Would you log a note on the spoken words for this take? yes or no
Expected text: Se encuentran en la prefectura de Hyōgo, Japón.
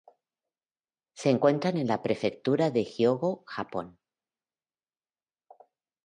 no